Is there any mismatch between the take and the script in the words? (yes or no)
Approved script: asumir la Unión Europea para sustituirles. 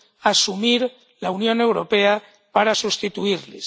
no